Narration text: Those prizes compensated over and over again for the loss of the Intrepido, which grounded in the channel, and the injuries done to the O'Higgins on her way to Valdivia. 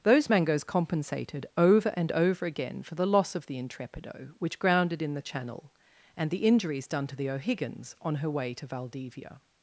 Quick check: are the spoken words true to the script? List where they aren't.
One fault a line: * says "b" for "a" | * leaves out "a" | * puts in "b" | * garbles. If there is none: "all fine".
* says "mangoes" for "prizes"